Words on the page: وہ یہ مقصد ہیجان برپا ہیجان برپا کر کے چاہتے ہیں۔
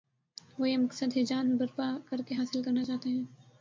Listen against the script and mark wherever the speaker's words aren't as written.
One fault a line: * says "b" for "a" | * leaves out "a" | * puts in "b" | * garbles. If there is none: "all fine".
* says "کر کے حاصل کرنا" for "ہیجان برپا کر کے"